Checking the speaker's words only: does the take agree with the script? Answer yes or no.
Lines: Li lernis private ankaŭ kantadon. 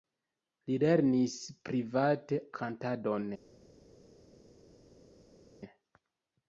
no